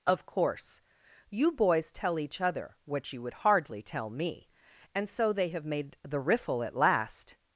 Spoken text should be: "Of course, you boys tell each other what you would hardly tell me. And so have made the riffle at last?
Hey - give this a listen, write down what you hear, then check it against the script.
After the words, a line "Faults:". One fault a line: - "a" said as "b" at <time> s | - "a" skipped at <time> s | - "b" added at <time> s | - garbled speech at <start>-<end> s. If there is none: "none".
"Of course, you boys tell each other what you would hardly tell me. And so they have made the riffle at last?
Faults:
- "they" added at 5.3 s